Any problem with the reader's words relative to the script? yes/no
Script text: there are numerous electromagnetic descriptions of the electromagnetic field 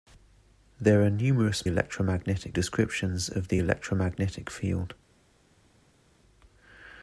no